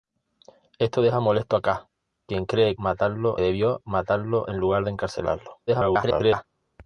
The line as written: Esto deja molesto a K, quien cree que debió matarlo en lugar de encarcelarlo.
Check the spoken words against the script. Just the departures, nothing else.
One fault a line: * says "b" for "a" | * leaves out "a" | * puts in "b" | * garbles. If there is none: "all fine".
* says "matarlo" for "que"
* garbles